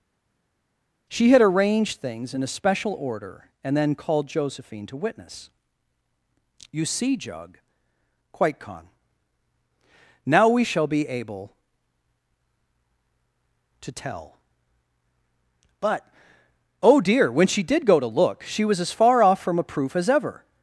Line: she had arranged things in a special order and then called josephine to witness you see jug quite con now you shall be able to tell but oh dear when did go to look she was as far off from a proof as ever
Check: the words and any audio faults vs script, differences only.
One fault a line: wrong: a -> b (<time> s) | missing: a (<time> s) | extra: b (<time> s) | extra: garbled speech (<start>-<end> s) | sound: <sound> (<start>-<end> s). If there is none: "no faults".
wrong: you -> we (10.5 s)
extra: she (17.5 s)